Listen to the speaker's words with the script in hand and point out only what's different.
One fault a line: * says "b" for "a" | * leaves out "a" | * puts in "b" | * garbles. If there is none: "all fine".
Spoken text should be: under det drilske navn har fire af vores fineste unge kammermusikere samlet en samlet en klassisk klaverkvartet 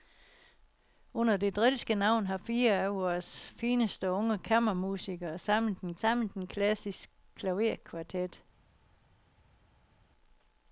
all fine